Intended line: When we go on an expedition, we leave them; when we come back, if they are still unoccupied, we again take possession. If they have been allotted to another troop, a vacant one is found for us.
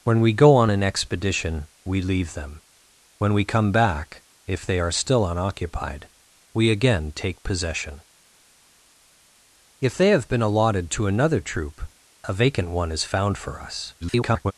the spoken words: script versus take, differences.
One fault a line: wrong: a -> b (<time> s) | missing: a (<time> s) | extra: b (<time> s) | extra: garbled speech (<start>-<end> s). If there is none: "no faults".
extra: garbled speech (14.0-14.5 s)